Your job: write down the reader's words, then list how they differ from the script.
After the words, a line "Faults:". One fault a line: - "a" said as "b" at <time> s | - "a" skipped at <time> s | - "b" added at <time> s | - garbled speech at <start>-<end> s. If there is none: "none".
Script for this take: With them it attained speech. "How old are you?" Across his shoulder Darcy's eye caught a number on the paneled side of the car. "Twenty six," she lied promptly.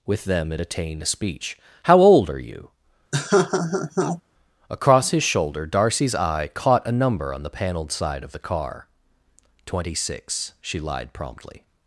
With them it attained speech. "How old are you?" Across his shoulder Darcy's eye caught a number on the paneled side of the car. "Twenty six," she lied promptly.
Faults:
none